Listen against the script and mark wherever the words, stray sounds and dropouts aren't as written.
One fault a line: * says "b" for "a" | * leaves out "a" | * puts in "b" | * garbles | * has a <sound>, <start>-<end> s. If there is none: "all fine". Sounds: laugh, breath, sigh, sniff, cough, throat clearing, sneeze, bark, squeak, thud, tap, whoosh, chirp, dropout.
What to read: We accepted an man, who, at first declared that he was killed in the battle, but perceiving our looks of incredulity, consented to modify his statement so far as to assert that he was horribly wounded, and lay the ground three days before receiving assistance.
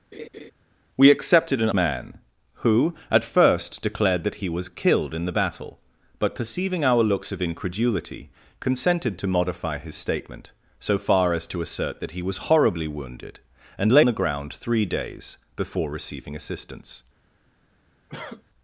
* has a laugh, 0.1-0.5 s
* has a cough, 18.1-18.4 s